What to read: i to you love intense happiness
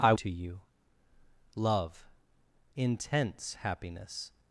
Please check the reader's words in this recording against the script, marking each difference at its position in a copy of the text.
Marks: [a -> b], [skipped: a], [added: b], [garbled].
i to you love intense happiness